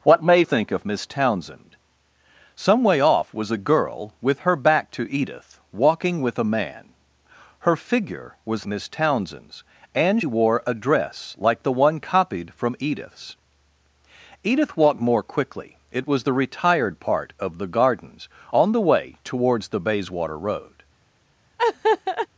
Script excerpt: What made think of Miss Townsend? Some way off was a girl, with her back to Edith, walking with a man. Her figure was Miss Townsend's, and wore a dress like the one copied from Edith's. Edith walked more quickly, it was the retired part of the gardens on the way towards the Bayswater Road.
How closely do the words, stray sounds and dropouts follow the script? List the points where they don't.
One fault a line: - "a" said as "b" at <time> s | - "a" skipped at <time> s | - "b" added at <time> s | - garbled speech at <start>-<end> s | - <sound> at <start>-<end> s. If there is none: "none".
- laugh at 21.6-22.3 s